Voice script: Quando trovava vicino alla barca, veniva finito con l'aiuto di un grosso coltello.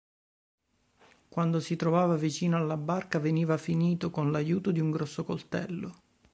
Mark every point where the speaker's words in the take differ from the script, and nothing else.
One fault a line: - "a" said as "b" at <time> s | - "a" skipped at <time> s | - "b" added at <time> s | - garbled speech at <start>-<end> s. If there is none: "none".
- "si" added at 1.6 s